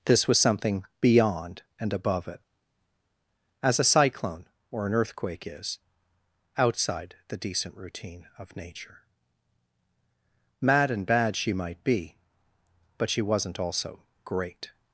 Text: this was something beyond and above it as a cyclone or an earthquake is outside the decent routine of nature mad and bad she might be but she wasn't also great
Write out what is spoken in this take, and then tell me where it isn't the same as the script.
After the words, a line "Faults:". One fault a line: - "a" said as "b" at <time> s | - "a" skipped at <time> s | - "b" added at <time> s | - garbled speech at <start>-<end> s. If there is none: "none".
this was something beyond and above it as a cyclone or an earthquake is outside the decent routine of nature mad and bad she might be but she wasn't also great
Faults:
none